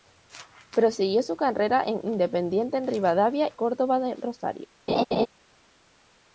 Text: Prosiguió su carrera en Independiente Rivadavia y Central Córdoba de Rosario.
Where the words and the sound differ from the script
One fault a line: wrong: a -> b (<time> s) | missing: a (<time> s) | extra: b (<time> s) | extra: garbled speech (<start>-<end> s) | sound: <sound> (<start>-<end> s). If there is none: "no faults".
missing: y Central (3.5 s)
sound: laugh (4.9-5.3 s)